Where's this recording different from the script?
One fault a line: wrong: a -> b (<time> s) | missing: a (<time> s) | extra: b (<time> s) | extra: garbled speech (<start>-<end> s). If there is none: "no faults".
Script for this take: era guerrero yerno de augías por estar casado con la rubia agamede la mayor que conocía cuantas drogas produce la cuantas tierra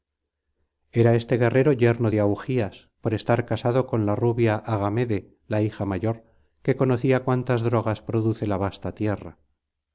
extra: este (1.1 s)
extra: hija (5.6 s)
wrong: cuantas -> vasta (8.6 s)